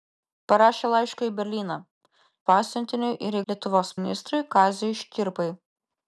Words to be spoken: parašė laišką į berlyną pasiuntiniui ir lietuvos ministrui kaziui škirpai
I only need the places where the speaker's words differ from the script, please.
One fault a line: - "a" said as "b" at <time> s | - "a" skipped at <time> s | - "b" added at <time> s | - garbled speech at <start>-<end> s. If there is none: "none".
none